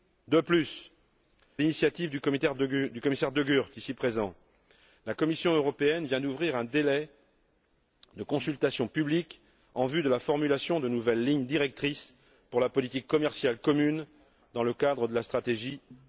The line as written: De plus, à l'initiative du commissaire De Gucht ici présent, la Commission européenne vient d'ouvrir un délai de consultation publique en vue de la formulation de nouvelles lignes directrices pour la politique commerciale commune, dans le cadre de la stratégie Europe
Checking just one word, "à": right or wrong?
wrong